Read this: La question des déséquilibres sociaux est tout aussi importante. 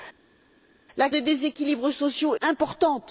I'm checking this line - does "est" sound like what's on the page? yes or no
no